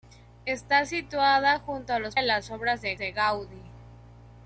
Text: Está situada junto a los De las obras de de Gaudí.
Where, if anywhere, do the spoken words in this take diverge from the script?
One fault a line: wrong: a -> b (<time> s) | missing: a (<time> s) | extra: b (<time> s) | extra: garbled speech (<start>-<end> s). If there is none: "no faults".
no faults